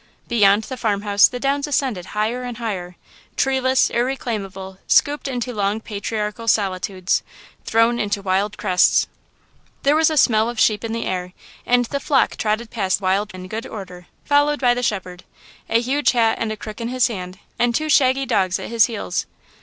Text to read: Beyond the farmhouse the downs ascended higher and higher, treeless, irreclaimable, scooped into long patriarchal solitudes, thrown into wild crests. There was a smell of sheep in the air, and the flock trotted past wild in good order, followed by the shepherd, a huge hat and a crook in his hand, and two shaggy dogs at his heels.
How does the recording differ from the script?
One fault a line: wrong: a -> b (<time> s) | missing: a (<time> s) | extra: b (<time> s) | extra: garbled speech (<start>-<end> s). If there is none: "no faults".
no faults